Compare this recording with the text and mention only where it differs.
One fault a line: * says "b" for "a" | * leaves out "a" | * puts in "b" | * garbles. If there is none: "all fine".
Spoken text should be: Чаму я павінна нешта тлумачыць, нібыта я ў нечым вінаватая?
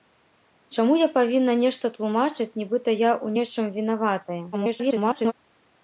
* garbles